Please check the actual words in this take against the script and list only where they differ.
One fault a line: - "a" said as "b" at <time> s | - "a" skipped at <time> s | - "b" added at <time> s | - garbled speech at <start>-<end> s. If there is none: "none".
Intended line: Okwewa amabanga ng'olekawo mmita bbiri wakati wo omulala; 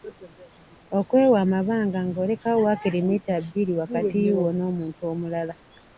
- "waakiri" added at 2.6 s
- "n'omuntu" added at 4.6 s